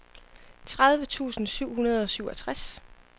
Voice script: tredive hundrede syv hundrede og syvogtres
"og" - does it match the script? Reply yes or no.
yes